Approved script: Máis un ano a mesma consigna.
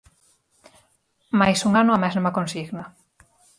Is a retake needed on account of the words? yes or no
no